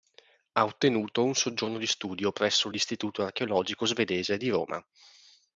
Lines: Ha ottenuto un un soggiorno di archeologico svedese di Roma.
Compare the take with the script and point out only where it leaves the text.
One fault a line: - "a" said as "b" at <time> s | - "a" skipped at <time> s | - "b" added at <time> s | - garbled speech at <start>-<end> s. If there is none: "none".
- "un" skipped at 1.4 s
- "studio presso l'istituto" added at 1.9 s